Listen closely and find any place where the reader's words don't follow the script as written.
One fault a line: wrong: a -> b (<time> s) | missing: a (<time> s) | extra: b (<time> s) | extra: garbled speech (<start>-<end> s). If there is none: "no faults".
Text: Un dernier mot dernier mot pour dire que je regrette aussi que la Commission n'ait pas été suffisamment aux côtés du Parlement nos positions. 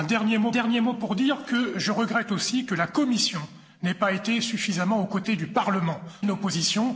no faults